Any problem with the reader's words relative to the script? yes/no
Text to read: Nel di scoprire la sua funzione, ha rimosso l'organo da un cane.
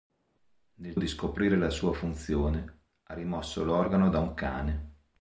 no